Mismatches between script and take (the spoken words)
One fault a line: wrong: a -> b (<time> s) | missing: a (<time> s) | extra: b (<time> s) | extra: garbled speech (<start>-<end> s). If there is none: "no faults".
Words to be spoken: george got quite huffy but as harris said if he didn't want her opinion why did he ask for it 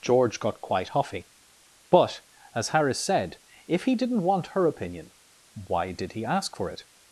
no faults